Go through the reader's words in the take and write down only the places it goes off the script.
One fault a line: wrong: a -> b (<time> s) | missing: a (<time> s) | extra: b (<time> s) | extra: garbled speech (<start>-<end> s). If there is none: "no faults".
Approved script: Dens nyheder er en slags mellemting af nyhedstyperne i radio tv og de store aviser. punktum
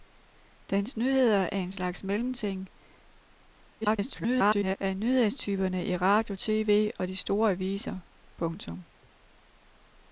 extra: garbled speech (3.8-4.8 s)